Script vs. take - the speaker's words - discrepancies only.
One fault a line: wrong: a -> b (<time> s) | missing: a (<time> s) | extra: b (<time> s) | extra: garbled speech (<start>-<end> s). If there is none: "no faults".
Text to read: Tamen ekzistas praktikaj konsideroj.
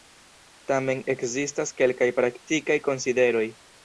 extra: kelkaj (1.8 s)